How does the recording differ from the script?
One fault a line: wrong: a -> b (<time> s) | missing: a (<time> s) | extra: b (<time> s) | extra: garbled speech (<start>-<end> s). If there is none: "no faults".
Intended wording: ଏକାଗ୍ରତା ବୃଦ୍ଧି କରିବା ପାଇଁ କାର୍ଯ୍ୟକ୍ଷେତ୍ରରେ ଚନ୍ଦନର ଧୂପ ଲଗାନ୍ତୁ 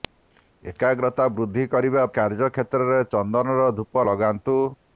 missing: ପାଇଁ (2.0 s)